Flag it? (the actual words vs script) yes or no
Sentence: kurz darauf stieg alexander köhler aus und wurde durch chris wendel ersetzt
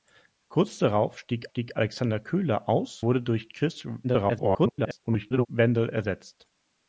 yes